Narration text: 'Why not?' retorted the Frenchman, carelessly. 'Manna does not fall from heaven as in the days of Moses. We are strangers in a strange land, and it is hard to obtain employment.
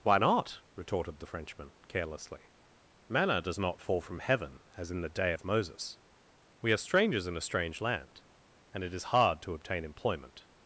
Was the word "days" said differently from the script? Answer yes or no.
yes